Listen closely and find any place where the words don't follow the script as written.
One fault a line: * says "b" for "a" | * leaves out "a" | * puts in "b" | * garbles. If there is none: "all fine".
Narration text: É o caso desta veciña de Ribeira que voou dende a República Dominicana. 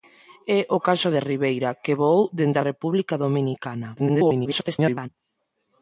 * leaves out "desta veciña"
* garbles